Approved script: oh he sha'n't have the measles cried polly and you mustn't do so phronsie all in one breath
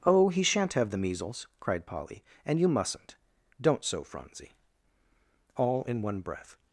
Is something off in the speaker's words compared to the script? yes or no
yes